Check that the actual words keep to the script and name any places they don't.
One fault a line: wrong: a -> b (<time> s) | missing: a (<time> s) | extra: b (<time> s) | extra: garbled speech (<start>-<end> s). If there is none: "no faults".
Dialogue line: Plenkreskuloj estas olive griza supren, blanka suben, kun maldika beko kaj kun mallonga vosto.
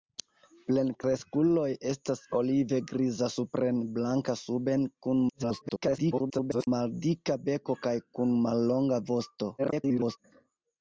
extra: garbled speech (5.3-6.7 s)
extra: garbled speech (9.6-10.2 s)